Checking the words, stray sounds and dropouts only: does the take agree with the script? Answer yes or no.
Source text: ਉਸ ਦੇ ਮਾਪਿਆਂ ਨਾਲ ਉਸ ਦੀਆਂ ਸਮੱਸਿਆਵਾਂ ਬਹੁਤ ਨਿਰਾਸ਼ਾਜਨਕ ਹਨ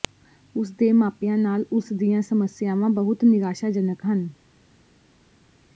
yes